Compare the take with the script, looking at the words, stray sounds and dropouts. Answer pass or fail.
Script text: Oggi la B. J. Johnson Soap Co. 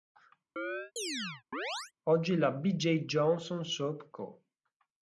fail